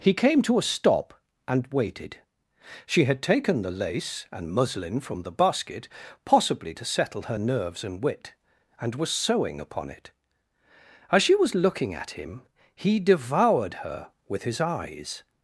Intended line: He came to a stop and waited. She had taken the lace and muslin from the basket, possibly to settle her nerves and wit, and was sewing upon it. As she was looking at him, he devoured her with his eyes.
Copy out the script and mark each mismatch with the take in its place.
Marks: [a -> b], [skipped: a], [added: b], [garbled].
He came to a stop and waited. She had taken the lace and muslin from the basket, possibly to settle her nerves and wit, and was sewing upon it. As she was looking at him, he devoured her with his eyes.